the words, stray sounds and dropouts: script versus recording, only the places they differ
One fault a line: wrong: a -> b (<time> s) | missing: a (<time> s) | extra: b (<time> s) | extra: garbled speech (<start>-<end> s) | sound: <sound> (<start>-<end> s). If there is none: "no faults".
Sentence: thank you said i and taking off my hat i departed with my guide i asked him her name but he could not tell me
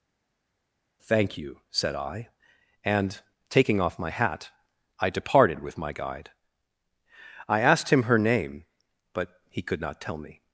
no faults